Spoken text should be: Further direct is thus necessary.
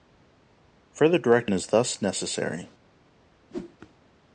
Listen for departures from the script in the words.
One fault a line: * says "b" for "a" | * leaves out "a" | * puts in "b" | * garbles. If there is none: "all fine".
all fine